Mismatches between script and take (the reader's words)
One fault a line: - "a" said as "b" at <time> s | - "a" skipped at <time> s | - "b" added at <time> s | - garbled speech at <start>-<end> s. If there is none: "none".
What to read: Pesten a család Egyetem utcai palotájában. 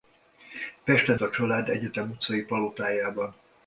none